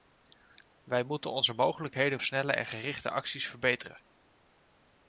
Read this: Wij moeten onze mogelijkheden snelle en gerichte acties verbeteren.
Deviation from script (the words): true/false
false